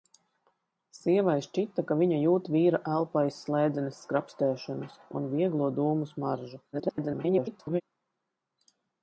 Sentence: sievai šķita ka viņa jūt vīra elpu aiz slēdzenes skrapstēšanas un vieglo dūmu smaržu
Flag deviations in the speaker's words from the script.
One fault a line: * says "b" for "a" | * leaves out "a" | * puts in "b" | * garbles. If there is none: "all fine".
* garbles